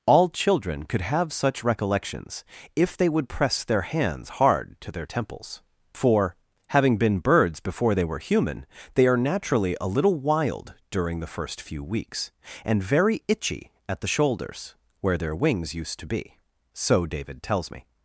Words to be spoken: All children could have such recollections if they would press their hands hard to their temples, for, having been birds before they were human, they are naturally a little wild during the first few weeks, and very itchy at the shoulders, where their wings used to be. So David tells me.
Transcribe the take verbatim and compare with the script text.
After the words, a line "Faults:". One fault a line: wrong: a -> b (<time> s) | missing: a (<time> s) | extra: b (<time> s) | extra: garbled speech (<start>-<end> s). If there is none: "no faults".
All children could have such recollections if they would press their hands hard to their temples, for, having been birds before they were human, they are naturally a little wild during the first few weeks, and very itchy at the shoulders, where their wings used to be. So David tells me.
Faults:
no faults